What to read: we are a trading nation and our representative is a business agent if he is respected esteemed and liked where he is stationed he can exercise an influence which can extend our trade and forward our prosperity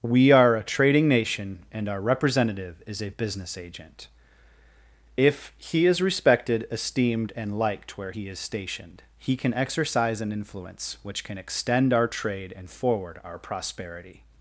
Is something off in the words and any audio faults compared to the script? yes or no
no